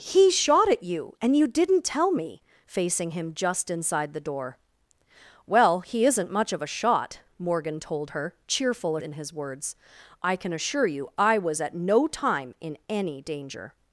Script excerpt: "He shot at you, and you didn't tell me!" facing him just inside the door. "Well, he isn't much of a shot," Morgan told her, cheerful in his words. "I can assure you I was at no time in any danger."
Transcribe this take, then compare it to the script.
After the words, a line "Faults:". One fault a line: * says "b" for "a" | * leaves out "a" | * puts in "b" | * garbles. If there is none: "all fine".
"He shot at you, and you didn't tell me!" facing him just inside the door. "Well, he isn't much of a shot," Morgan told her, cheerful in his words. "I can assure you I was at no time in any danger."
Faults:
all fine